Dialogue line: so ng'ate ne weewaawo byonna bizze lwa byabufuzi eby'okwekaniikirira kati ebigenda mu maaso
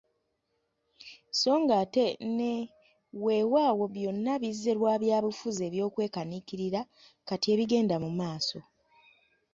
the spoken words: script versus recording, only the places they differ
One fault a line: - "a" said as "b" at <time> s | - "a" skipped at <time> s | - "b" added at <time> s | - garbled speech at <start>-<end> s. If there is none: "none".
none